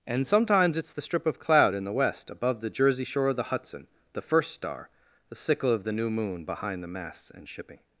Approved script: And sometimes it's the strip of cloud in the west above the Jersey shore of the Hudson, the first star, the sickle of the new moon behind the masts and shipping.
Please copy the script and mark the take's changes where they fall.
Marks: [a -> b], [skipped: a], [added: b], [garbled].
And sometimes it's the strip of cloud in the west above the Jersey shore of the Hudson, the first star, the sickle of the new moon behind the masts and shipping.